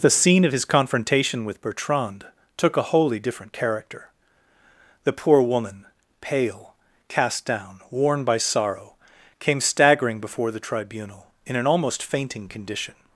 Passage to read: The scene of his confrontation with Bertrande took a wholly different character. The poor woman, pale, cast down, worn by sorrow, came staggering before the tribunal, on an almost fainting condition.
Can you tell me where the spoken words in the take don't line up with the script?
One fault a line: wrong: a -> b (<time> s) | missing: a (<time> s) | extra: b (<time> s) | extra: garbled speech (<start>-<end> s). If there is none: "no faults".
wrong: on -> in (11.4 s)